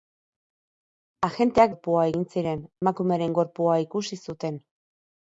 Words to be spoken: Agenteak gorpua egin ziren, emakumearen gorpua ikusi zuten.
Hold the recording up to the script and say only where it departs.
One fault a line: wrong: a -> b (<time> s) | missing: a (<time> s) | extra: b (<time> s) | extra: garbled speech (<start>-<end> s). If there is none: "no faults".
no faults